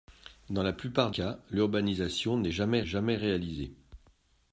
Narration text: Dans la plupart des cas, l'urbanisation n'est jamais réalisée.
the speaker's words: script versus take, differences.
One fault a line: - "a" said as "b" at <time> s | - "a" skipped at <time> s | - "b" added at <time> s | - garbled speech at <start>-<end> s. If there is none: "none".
- "des" skipped at 1.1 s
- "jamais" added at 2.9 s